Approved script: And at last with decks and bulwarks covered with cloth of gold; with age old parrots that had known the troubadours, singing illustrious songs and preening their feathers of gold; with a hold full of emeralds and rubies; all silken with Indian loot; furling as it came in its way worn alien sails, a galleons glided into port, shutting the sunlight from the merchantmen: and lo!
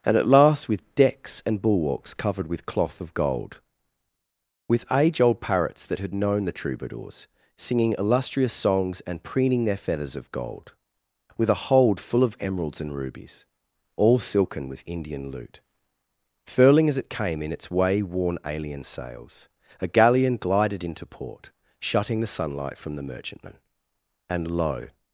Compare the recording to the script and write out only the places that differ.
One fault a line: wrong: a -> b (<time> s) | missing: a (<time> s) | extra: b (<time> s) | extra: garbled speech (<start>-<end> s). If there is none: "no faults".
wrong: galleons -> galleon (19.9 s)